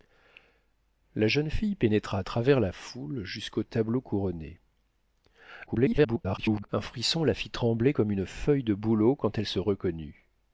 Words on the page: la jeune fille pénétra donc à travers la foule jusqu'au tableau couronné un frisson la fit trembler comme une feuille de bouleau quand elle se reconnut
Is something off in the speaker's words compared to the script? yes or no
yes